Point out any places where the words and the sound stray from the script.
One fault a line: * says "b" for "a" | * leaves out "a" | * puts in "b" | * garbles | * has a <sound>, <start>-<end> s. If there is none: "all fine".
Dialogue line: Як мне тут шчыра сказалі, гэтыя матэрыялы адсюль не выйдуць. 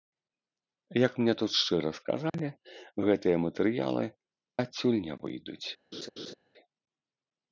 * has a dropout, 2.3-2.3 s
* has a laugh, 5.9-6.3 s